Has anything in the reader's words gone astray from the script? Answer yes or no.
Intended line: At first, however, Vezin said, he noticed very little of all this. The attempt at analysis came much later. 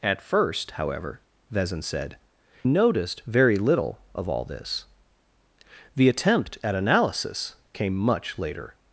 yes